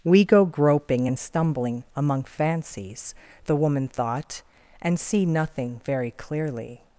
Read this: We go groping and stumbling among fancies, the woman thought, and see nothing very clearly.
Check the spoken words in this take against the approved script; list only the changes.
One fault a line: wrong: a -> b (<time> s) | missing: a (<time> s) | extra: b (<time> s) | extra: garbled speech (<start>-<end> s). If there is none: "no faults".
no faults